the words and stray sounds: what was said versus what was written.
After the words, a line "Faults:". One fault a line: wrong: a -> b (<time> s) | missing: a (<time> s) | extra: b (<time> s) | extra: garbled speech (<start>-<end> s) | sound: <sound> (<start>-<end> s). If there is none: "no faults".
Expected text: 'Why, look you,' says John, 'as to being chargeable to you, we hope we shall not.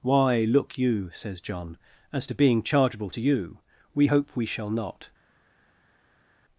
'Why, look you,' says John, 'as to being chargeable to you, we hope we shall not.
Faults:
no faults